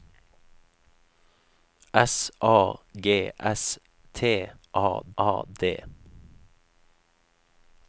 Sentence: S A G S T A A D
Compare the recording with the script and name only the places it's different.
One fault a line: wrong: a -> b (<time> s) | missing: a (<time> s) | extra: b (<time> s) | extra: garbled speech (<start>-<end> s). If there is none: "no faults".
no faults